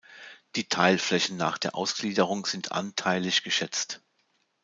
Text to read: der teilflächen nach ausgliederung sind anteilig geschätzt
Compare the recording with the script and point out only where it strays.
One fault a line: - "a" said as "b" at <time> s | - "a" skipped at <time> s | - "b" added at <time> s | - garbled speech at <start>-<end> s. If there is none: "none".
- "der" said as "die" at 0.6 s
- "der" added at 1.6 s